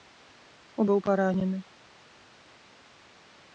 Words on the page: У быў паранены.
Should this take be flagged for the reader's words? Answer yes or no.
no